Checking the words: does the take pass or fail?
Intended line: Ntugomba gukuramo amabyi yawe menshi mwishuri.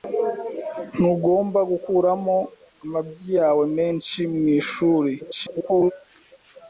fail